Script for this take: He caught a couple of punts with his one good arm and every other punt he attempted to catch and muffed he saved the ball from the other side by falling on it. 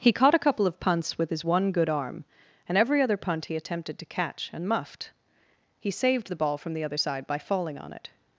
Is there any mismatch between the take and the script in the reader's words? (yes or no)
no